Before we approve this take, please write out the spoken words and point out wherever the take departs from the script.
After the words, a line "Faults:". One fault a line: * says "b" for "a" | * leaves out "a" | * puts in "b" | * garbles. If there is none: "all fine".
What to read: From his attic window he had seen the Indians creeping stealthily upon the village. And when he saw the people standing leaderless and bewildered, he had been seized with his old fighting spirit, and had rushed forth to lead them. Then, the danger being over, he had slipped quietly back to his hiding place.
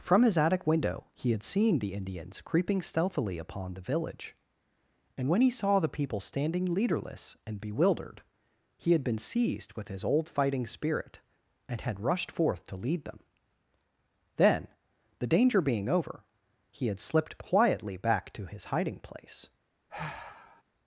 From his attic window he had seen the Indians creeping stealthily upon the village. And when he saw the people standing leaderless and bewildered, he had been seized with his old fighting spirit, and had rushed forth to lead them. Then, the danger being over, he had slipped quietly back to his hiding place.
Faults:
all fine